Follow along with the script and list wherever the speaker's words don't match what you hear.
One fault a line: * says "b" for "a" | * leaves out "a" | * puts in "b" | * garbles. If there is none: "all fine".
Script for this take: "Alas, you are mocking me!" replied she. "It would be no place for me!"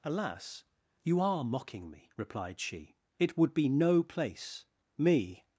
* leaves out "for"